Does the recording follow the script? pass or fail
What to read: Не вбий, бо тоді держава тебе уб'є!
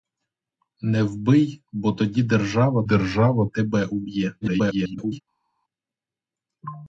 fail